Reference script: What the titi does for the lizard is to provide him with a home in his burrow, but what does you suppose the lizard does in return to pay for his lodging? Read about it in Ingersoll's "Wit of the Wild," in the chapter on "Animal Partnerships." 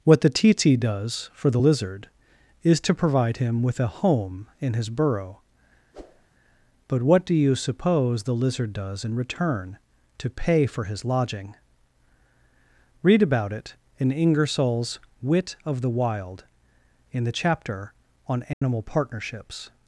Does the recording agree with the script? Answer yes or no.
no